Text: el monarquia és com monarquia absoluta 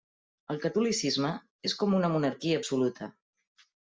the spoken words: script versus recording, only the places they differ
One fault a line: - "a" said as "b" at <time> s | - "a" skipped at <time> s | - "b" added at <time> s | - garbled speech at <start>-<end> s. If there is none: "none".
- "monarquia" said as "catolicisme" at 0.6 s
- "una" added at 2.0 s